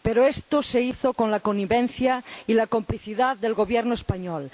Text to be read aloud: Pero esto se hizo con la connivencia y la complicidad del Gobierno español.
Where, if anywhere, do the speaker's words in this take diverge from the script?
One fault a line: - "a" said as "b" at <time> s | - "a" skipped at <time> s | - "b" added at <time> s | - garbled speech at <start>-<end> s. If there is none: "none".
none